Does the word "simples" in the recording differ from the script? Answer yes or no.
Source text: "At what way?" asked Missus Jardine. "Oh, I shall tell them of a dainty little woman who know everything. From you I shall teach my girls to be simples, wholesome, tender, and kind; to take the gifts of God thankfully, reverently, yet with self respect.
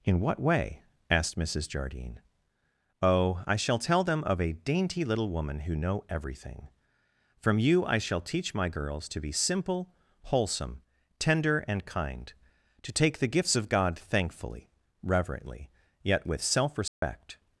yes